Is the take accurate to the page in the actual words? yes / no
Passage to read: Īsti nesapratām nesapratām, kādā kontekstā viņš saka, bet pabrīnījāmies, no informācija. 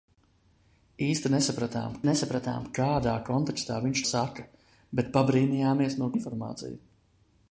yes